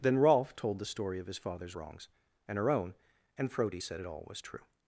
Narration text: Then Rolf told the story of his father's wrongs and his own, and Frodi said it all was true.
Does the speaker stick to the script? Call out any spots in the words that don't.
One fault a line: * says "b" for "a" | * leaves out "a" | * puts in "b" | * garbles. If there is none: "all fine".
* says "her" for "his"